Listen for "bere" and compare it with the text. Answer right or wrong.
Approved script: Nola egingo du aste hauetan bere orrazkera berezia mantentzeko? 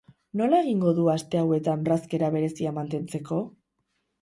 wrong